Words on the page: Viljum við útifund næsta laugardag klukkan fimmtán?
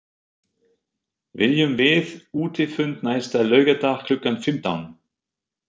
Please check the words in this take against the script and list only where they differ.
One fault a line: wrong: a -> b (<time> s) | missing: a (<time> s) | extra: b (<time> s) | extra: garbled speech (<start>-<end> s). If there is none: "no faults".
no faults